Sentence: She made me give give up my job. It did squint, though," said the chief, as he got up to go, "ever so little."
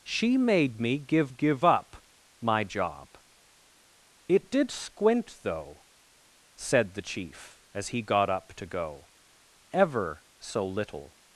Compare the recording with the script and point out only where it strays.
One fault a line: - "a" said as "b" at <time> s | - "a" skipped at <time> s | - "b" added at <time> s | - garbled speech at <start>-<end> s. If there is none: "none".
none